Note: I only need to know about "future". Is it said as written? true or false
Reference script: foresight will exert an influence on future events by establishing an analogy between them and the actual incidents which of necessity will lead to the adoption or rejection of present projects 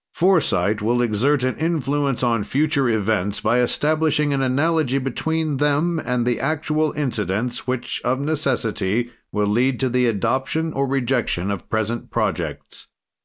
true